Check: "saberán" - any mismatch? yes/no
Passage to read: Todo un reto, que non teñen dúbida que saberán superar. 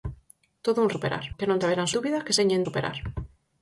yes